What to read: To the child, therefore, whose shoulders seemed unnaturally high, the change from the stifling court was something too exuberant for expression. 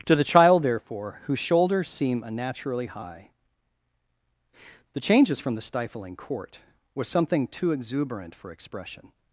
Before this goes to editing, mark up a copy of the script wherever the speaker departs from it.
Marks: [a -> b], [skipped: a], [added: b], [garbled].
To the child, therefore, whose shoulders [seemed -> seem] unnaturally high, the [change -> changes] from the stifling court was something too exuberant for expression.